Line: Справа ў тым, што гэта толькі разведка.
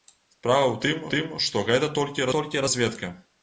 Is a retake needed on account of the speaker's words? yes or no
yes